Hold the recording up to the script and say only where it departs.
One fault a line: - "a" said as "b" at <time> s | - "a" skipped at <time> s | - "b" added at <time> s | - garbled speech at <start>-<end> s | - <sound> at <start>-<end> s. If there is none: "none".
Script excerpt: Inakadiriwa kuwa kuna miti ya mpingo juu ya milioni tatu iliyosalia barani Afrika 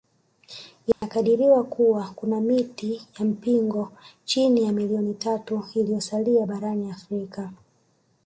- dropout at 0.9-1.0 s
- "juu" said as "chini" at 4.2 s